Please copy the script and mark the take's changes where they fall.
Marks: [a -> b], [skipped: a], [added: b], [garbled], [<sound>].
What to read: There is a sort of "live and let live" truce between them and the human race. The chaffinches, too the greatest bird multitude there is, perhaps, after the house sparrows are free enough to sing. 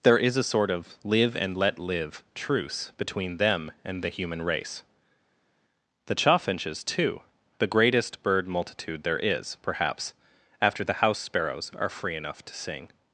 There is a sort of "live and let live" truce between them and the human race. The chaffinches, too the greatest bird multitude there is, perhaps, after the house sparrows are free enough to sing.